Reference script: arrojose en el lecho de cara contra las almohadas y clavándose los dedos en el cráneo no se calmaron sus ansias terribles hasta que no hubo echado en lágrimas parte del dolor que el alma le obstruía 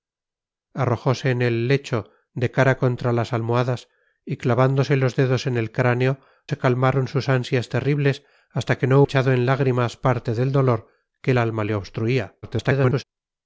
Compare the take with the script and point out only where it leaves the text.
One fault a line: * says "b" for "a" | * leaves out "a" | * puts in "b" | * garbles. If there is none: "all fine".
* leaves out "no"
* leaves out "hubo"
* garbles